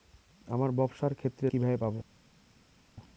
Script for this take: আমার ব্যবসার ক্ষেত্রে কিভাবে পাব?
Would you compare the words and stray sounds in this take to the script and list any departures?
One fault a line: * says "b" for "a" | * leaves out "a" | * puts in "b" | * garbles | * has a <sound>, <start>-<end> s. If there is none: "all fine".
all fine